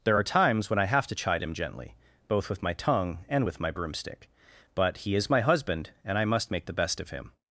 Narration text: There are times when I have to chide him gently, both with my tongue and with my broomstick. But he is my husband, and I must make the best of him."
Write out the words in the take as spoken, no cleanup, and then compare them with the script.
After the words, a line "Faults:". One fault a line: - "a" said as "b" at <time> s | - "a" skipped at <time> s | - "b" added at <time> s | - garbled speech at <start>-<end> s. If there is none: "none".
There are times when I have to chide him gently, both with my tongue and with my broomstick. But he is my husband, and I must make the best of him."
Faults:
none